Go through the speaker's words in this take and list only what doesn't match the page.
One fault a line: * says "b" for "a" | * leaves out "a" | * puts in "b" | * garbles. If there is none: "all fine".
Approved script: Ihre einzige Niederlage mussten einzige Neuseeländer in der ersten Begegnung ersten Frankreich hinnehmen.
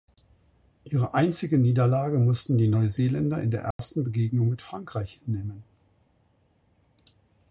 * says "die" for "einzige"
* says "mit" for "ersten"